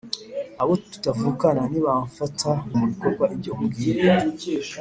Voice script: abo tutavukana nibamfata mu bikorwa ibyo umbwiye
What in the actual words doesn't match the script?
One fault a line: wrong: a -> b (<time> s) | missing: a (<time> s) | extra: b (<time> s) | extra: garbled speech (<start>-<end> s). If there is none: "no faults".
no faults